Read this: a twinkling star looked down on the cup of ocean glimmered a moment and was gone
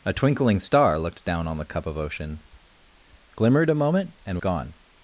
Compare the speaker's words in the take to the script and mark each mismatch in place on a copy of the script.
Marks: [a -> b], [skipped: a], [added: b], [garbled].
a twinkling star looked down on the cup of ocean glimmered a moment and [skipped: was] gone